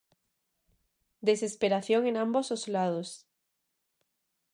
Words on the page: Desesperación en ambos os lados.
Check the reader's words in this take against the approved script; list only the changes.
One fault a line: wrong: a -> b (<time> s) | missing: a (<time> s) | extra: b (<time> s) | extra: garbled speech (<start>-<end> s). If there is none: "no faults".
no faults